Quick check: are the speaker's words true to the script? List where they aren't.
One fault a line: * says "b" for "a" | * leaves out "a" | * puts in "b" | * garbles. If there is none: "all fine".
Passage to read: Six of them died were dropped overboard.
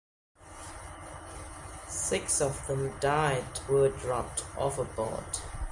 all fine